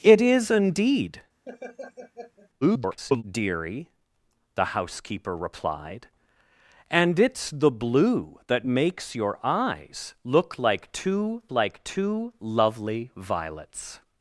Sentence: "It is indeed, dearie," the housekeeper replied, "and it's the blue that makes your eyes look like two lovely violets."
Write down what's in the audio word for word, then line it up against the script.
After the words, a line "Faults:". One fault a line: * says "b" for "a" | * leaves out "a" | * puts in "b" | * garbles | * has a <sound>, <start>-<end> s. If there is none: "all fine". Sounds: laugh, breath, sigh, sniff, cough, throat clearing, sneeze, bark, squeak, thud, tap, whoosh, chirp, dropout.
"It is indeed, [garbled] dearie," the housekeeper replied, "and it's the blue that makes your eyes look like two like two lovely violets."
Faults:
* has a laugh, 1.5-2.5 s
* garbles
* puts in "like two"